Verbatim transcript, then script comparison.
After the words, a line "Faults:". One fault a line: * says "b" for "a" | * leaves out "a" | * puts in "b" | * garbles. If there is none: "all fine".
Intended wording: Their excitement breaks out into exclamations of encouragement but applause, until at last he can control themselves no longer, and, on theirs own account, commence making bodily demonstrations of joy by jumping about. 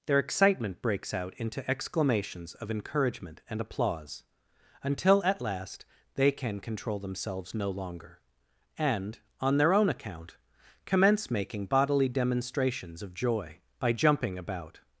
Their excitement breaks out into exclamations of encouragement and applause, until at last they can control themselves no longer, and, on their own account, commence making bodily demonstrations of joy by jumping about.
Faults:
* says "and" for "but"
* says "they" for "he"
* says "their" for "theirs"